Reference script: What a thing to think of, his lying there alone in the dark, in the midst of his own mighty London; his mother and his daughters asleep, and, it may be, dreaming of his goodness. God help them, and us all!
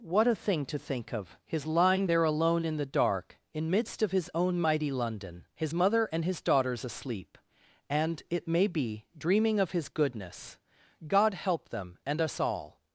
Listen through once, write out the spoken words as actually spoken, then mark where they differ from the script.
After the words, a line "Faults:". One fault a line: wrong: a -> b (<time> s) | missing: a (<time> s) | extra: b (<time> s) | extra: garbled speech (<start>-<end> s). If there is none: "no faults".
What a thing to think of, his lying there alone in the dark, in midst of his own mighty London; his mother and his daughters asleep, and, it may be, dreaming of his goodness. God help them, and us all!
Faults:
missing: the (3.7 s)